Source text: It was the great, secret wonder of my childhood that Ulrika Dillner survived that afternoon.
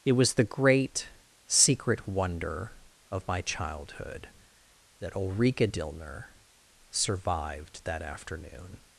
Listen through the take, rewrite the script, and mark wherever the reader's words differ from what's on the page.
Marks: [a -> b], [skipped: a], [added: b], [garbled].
It was the great, secret wonder of my childhood that Ulrika Dillner survived that afternoon.